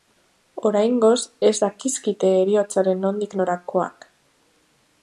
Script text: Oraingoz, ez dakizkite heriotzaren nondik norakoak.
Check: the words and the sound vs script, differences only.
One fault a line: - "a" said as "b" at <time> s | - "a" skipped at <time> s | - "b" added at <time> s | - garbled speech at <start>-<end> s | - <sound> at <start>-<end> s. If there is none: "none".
none